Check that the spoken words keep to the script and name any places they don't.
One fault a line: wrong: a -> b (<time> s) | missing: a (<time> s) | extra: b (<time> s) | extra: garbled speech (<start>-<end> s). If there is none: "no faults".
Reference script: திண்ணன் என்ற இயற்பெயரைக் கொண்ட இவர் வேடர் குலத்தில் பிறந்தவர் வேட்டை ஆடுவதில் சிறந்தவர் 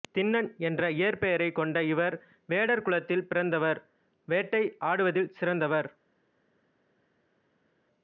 no faults